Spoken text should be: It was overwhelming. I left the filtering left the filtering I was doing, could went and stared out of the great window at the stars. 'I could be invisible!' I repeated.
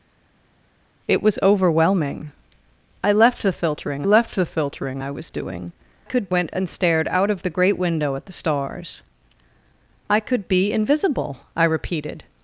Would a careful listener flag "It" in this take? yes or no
no